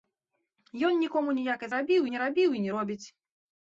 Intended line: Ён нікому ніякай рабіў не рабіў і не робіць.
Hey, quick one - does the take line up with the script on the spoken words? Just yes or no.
yes